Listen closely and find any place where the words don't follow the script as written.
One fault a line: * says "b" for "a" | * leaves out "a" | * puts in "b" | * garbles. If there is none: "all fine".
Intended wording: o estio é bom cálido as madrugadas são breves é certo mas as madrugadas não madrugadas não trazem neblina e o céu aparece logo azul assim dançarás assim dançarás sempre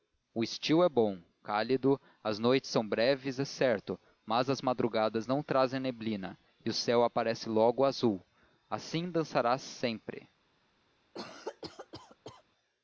* says "noites" for "madrugadas"
* leaves out "madrugadas não"
* leaves out "assim dançarás"